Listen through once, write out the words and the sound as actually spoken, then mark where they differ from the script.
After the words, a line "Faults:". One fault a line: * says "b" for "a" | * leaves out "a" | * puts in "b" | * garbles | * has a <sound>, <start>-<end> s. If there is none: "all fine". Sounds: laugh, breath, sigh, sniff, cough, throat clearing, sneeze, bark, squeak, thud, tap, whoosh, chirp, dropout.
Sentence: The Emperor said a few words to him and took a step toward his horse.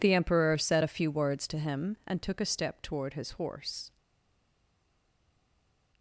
The Emperor said a few words to him and took a step toward his horse.
Faults:
all fine